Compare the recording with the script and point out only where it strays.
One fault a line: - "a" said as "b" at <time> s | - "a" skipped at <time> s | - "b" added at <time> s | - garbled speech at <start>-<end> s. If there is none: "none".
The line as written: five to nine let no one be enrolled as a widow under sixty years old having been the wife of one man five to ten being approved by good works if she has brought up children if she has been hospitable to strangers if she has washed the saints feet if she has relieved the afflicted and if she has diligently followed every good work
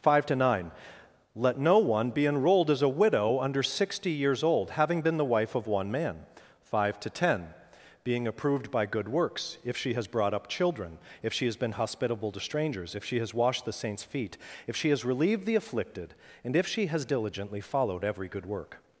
none